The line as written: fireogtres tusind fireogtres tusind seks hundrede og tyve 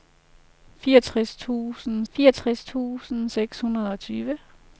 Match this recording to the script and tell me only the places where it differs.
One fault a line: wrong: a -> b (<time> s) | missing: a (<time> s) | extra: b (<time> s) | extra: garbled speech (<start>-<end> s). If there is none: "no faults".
no faults